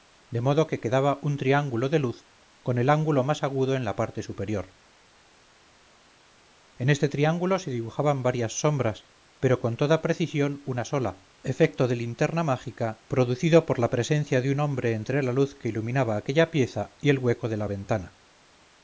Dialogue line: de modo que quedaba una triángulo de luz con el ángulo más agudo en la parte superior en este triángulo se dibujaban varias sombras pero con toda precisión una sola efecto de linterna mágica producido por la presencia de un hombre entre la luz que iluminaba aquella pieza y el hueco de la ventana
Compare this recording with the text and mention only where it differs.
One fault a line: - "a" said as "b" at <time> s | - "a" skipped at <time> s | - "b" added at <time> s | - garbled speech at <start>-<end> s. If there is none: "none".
- "una" said as "un" at 1.2 s